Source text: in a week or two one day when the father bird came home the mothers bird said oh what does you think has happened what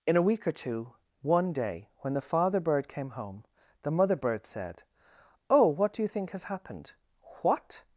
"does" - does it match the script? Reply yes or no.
no